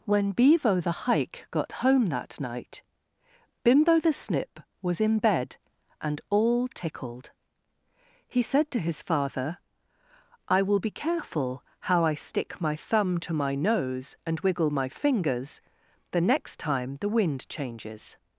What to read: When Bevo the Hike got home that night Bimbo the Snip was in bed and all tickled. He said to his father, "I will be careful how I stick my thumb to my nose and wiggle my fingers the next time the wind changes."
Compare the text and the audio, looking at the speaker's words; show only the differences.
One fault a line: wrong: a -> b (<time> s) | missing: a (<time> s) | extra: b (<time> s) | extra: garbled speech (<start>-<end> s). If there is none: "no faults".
no faults